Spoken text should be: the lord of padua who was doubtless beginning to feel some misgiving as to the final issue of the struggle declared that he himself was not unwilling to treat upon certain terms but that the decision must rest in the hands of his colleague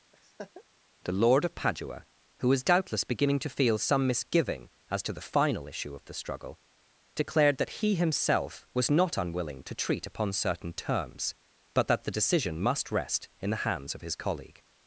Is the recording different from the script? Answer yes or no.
no